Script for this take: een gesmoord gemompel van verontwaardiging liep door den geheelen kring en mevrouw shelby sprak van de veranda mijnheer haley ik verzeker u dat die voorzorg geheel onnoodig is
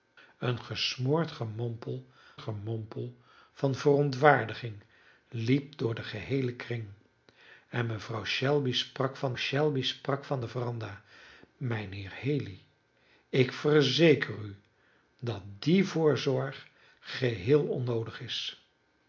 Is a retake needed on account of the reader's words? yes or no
yes